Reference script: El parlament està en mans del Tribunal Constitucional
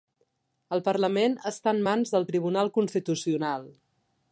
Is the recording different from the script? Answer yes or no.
no